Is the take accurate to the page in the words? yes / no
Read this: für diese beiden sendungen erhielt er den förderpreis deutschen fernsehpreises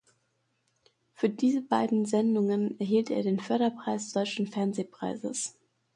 yes